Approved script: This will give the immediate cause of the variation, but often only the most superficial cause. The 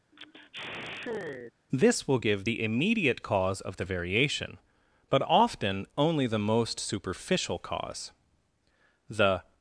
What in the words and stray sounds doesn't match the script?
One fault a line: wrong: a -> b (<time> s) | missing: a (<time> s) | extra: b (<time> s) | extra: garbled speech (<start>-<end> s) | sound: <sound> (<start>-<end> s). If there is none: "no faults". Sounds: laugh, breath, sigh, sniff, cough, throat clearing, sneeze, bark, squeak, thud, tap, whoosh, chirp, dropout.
sound: sigh (0.1-1.5 s)